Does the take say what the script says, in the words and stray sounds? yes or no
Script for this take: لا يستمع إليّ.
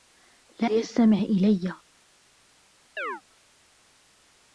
no